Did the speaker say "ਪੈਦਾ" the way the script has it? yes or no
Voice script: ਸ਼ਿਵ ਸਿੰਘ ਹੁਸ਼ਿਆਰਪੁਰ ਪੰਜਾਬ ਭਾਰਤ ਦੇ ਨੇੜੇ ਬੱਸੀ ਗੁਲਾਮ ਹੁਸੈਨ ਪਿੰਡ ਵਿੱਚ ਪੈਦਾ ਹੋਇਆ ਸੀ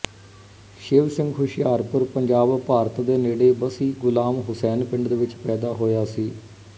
yes